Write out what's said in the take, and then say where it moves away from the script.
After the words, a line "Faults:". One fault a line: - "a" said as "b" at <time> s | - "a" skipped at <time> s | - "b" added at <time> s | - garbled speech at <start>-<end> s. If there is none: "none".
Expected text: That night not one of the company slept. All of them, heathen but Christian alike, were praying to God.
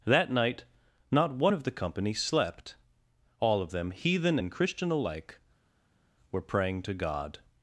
That night not one of the company slept. All of them, heathen and Christian alike, were praying to God.
Faults:
- "but" said as "and" at 4.3 s